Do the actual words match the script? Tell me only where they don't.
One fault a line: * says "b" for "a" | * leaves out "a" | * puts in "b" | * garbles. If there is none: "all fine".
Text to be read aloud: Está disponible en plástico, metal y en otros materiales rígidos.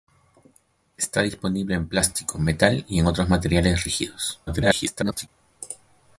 * garbles